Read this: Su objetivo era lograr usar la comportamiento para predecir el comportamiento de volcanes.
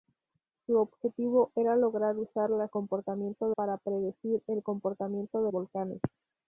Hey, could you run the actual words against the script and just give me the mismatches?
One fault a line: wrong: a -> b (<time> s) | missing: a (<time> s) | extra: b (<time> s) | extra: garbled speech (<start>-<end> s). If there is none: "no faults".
no faults